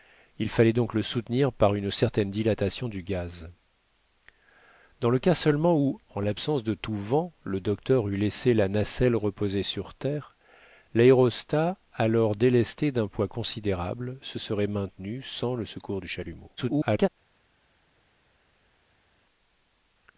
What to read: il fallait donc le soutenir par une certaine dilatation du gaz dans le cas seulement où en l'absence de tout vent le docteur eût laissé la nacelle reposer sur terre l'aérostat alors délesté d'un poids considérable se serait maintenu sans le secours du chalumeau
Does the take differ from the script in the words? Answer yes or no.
yes